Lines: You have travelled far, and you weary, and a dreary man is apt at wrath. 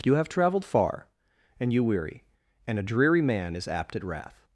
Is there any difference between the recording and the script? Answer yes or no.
no